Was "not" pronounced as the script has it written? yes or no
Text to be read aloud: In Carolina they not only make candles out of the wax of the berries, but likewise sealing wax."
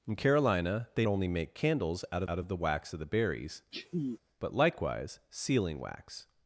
no